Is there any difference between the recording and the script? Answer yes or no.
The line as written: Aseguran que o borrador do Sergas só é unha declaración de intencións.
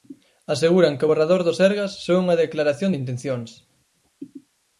no